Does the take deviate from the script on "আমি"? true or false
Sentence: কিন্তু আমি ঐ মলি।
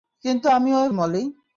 false